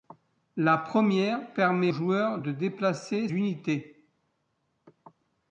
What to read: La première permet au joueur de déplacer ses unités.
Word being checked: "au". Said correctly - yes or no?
no